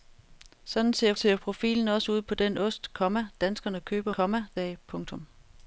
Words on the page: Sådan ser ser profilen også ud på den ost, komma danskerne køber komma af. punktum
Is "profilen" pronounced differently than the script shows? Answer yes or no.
no